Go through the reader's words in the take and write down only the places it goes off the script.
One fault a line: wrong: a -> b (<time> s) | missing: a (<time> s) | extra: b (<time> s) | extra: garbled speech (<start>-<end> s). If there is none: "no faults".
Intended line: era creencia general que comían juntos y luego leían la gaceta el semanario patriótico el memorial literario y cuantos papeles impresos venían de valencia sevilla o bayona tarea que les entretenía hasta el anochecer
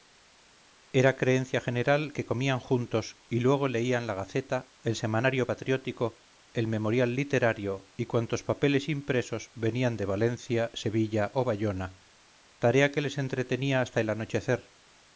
no faults